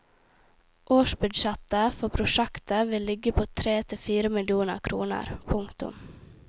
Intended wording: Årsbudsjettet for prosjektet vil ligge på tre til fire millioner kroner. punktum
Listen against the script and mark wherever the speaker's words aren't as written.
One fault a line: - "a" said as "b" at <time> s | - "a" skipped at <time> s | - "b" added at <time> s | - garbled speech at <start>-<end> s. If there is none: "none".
none